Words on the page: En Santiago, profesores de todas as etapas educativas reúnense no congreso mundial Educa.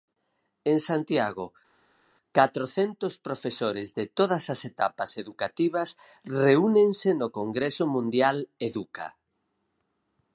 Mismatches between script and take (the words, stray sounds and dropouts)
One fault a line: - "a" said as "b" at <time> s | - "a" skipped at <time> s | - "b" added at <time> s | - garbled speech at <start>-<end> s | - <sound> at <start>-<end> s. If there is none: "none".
- "catrocentos" added at 2.4 s